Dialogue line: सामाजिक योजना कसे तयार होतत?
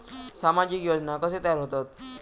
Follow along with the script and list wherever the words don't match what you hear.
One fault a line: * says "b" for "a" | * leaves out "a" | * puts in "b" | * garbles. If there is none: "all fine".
all fine